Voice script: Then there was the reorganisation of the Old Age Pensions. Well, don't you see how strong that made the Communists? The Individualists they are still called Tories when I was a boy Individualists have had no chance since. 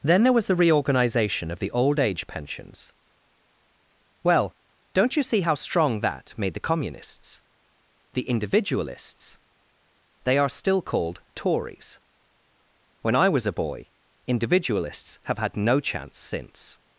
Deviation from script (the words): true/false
false